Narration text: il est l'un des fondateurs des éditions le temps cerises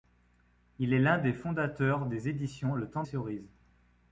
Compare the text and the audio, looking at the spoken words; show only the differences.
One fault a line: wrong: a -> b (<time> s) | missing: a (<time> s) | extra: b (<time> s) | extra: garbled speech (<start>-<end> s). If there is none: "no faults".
no faults